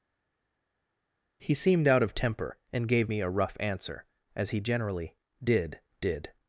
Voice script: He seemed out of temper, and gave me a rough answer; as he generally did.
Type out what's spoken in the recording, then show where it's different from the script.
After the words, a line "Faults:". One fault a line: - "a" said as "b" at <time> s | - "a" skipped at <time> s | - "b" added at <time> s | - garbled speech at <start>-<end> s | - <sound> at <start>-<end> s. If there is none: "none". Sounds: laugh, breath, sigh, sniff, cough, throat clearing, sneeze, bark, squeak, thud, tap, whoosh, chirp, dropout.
He seemed out of temper, and gave me a rough answer; as he generally did did.
Faults:
- "did" added at 6.0 s